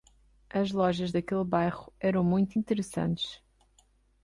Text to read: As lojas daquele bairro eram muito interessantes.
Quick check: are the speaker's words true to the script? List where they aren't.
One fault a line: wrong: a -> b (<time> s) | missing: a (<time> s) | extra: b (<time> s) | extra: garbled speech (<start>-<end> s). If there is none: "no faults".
no faults